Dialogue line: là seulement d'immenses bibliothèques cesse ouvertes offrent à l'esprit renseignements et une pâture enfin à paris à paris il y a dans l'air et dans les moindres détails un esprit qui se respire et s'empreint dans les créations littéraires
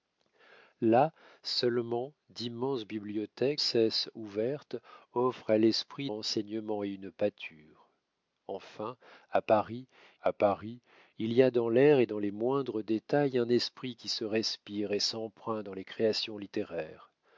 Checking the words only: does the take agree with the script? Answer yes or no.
yes